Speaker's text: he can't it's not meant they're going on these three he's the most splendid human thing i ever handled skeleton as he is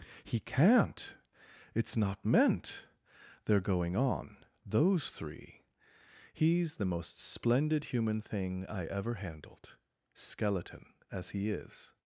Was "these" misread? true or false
true